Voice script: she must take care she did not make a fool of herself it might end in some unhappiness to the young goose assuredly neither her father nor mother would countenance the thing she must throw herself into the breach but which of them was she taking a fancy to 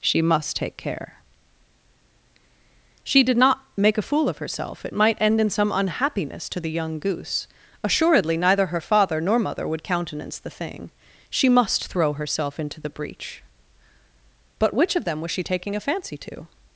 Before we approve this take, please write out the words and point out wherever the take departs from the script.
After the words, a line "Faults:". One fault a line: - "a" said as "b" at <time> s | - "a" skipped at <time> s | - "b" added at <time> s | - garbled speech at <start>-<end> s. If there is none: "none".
she must take care she did not make a fool of herself it might end in some unhappiness to the young goose assuredly neither her father nor mother would countenance the thing she must throw herself into the breach but which of them was she taking a fancy to
Faults:
none